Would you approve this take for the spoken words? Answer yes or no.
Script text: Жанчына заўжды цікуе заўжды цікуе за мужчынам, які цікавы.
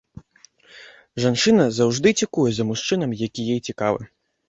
no